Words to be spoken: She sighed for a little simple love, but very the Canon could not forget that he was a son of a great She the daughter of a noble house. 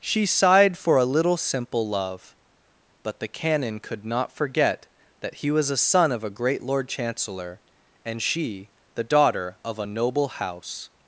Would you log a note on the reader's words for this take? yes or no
yes